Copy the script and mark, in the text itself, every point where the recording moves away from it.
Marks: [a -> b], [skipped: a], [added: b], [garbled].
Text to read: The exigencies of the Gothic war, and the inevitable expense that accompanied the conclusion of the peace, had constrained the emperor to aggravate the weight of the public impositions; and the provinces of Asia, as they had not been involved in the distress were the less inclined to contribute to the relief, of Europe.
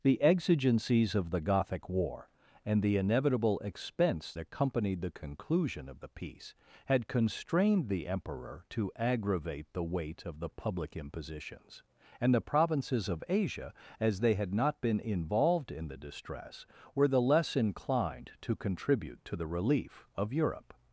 The exigencies of the Gothic war, and the inevitable expense [skipped: that] accompanied the conclusion of the peace, had constrained the emperor to aggravate the weight of the public impositions; and the provinces of Asia, as they had not been involved in the distress were the less inclined to contribute to the relief, of Europe.